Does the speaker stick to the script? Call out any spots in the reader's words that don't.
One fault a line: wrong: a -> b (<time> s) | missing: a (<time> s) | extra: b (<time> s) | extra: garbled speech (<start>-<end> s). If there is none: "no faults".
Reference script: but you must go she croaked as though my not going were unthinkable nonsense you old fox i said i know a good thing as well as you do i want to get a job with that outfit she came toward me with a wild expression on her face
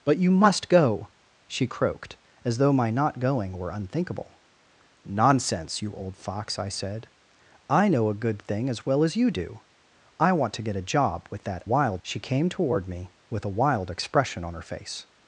wrong: outfit -> wild (11.7 s)